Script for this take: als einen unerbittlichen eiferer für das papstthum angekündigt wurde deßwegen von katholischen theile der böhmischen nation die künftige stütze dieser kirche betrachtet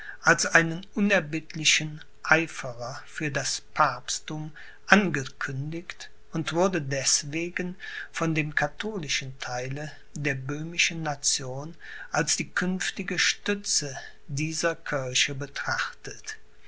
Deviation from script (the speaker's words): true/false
true